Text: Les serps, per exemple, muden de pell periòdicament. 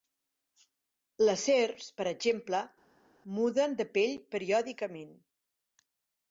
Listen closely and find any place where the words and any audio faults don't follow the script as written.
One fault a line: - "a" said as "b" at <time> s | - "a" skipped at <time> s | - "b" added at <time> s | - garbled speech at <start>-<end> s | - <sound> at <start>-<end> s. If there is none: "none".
none